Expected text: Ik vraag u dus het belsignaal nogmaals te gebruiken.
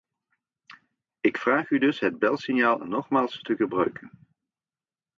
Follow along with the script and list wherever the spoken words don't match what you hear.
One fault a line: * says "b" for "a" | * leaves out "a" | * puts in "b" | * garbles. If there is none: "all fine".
all fine